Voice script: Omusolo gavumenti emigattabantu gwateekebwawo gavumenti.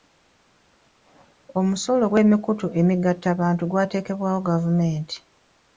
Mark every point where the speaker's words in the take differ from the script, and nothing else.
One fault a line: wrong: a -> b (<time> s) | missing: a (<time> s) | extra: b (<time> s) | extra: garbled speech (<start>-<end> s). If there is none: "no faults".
wrong: gavumenti -> gw'emikutu (2.1 s)